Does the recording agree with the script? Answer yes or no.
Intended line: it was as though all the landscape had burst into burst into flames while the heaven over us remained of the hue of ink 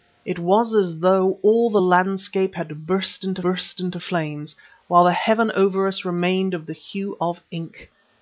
yes